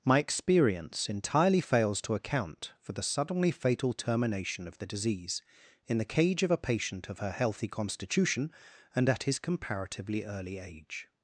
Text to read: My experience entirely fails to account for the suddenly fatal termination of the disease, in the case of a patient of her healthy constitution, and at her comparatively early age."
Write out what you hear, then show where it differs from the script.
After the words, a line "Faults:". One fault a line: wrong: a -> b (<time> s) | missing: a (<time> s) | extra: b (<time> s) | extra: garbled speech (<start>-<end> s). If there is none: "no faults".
My experience entirely fails to account for the suddenly fatal termination of the disease, in the cage of a patient of her healthy constitution, and at his comparatively early age."
Faults:
wrong: case -> cage (6.0 s)
wrong: her -> his (9.2 s)